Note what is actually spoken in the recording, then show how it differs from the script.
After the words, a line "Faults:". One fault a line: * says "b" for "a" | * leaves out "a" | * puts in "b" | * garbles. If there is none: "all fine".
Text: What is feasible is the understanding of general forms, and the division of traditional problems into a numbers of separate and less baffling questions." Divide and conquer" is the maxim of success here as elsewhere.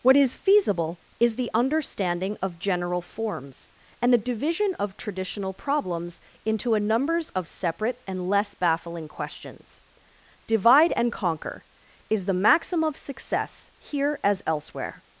What is feasible is the understanding of general forms, and the division of traditional problems into a numbers of separate and less baffling questions." Divide and conquer" is the maxim of success here as elsewhere.
Faults:
all fine